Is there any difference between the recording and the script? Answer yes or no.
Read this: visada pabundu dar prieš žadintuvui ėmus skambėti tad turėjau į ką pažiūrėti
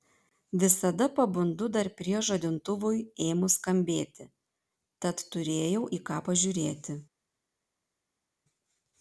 no